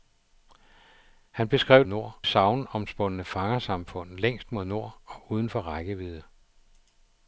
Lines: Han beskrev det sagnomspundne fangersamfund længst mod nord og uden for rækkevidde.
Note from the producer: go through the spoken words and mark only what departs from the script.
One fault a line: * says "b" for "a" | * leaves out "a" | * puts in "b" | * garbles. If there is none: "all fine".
* says "nord" for "det"